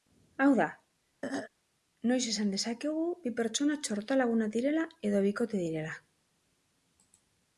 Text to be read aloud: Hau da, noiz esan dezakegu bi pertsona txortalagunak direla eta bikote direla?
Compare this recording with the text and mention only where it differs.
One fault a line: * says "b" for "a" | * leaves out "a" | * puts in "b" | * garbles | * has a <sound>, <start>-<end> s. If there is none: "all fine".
* has a throat clearing, 1.2-1.5 s
* says "edo" for "eta"